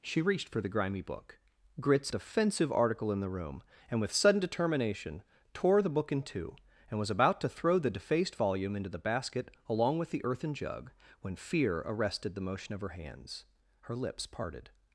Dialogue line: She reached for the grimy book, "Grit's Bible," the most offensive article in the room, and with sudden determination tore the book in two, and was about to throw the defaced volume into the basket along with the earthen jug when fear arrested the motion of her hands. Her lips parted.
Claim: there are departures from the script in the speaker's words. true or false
true